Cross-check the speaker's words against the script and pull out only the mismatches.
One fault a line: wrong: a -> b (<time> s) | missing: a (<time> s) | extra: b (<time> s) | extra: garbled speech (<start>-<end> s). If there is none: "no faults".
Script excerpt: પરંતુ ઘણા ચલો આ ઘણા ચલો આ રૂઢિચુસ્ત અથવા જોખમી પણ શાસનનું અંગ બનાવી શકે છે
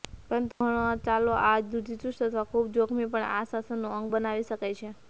missing: ઘણા ચલો આ (1.6 s)
extra: ખૂબ (2.5 s)
extra: આ (3.3 s)